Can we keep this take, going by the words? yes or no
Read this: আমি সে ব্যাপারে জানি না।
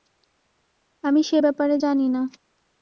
yes